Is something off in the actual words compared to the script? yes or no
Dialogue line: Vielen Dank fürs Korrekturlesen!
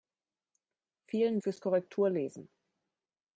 yes